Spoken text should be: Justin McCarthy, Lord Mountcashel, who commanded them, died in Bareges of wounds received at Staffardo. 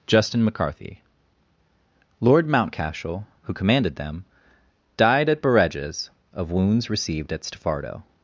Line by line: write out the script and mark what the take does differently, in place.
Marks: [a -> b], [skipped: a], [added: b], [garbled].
Justin McCarthy, Lord Mountcashel, who commanded them, died [in -> at] Bareges of wounds received at Staffardo.